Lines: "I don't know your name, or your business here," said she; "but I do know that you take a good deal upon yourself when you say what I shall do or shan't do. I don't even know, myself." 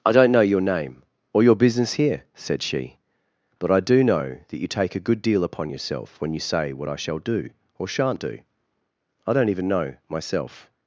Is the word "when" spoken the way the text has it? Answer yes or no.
yes